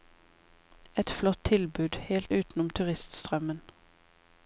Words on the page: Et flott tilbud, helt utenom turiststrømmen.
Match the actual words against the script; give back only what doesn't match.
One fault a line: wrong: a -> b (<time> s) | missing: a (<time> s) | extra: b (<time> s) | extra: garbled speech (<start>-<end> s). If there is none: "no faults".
no faults